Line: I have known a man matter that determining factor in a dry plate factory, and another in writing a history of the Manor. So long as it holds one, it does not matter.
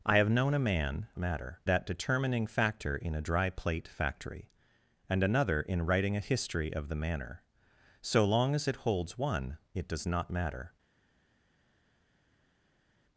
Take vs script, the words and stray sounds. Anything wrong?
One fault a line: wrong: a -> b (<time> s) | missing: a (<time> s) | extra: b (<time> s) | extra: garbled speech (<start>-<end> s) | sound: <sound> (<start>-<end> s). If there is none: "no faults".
no faults